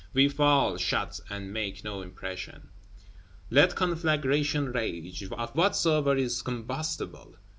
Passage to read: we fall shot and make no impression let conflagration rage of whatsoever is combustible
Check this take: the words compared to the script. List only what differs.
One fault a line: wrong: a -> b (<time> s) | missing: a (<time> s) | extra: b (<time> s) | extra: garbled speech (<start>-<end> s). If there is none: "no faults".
no faults